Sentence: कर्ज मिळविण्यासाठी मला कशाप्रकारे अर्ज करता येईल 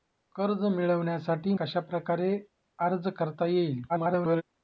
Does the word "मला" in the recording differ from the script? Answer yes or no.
yes